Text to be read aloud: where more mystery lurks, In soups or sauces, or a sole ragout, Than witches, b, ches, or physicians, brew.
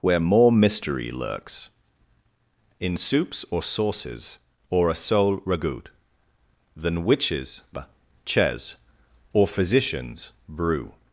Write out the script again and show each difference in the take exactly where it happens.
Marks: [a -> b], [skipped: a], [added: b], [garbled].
where more mystery lurks, In soups or sauces, or a sole ragout, Than witches, [skipped: b,] ches, or physicians, brew.